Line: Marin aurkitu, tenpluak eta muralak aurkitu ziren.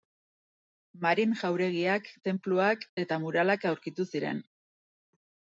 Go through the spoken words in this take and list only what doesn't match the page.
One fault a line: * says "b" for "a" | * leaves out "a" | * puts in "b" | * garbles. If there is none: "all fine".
* says "jauregiak" for "aurkitu"